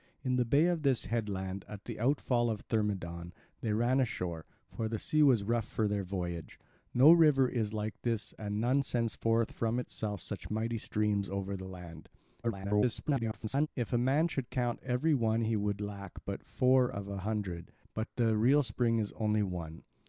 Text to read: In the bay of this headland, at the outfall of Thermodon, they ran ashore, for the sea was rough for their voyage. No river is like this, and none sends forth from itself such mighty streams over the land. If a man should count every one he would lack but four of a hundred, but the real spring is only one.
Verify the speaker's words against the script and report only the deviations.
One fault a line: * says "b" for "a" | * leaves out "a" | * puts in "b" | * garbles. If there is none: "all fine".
* garbles